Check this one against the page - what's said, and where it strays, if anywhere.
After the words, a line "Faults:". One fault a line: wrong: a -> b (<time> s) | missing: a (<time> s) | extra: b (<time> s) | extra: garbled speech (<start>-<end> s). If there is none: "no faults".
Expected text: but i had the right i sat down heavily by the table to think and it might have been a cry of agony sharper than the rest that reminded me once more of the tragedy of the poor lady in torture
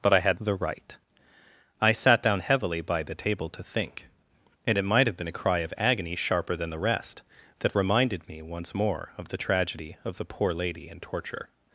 but i had the right i sat down heavily by the table to think and it might have been a cry of agony sharper than the rest that reminded me once more of the tragedy of the poor lady in torture
Faults:
no faults